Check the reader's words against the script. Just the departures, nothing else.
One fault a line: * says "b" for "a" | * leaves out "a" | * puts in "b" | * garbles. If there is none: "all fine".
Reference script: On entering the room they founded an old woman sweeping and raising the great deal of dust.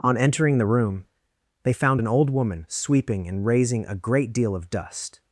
* says "found" for "founded"
* says "a" for "the"